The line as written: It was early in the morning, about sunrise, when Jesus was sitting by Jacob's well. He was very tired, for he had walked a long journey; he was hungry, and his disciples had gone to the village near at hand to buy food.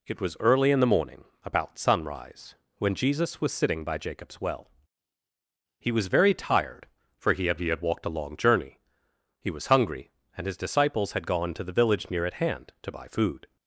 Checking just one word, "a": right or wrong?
right